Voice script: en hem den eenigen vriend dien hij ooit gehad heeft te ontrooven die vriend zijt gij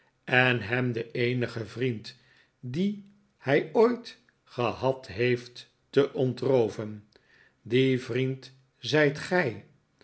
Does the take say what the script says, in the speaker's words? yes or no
yes